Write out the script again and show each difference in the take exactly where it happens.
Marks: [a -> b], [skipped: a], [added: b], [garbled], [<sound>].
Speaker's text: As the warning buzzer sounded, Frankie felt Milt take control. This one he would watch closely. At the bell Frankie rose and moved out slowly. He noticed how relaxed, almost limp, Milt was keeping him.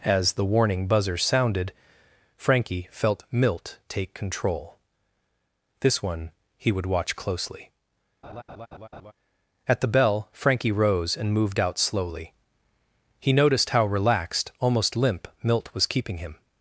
As the warning buzzer sounded, Frankie felt Milt take control. This one he would watch closely. [laugh] At the bell Frankie rose and moved out slowly. He noticed how relaxed, almost limp, Milt was keeping him.